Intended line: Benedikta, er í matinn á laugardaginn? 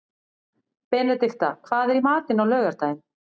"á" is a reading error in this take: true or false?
false